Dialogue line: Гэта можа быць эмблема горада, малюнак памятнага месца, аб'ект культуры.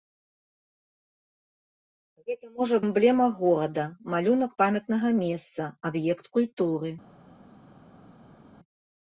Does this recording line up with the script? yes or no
no